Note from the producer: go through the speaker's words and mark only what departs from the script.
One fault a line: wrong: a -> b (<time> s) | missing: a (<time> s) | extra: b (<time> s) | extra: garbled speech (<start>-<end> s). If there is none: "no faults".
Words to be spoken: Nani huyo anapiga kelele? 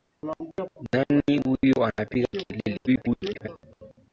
extra: garbled speech (2.9-3.5 s)